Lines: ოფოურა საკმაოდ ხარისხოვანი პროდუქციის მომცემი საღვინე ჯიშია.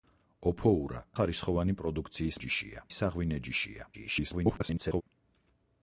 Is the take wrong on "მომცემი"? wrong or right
wrong